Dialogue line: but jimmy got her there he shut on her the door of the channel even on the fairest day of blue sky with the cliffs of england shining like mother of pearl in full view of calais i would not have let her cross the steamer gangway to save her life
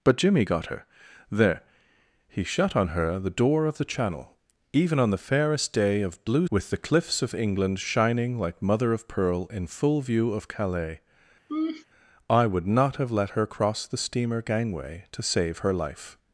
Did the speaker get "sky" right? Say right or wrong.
wrong